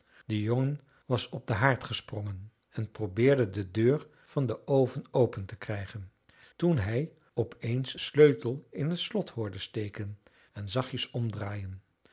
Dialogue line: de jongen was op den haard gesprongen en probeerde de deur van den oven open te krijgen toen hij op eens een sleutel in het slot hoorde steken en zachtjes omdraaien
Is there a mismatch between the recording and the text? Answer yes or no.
yes